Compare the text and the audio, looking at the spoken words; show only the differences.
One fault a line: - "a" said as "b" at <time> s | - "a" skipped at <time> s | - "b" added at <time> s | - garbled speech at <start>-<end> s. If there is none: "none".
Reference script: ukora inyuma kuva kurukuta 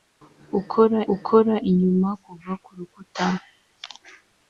- "ukora" added at 1.1 s